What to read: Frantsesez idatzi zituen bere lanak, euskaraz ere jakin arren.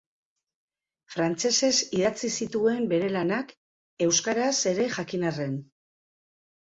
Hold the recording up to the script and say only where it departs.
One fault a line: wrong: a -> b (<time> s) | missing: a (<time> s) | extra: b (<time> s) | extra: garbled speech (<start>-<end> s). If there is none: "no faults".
no faults